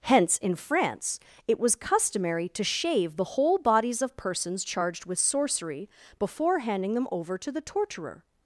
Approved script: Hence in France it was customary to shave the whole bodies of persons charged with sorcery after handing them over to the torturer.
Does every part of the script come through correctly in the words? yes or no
no